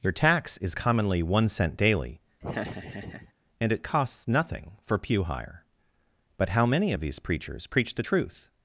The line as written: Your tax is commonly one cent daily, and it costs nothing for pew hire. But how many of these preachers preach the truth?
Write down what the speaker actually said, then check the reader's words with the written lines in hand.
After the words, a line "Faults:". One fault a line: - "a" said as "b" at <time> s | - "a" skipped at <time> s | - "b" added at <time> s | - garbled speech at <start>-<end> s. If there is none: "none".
Your tax is commonly one cent daily, and it costs nothing for pew hire. But how many of these preachers preach the truth?
Faults:
none